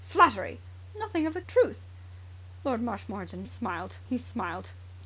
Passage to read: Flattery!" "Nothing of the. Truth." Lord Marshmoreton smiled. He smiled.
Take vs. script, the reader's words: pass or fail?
pass